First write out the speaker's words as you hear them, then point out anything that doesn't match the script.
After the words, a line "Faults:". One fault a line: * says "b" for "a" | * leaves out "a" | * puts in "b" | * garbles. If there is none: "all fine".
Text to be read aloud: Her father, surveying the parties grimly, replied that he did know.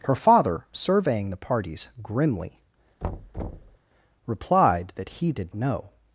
Her father, surveying the parties grimly, replied that he did know.
Faults:
all fine